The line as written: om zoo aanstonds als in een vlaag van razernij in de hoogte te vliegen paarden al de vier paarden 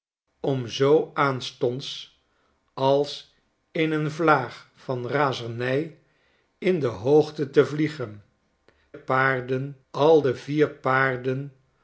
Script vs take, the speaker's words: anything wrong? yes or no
no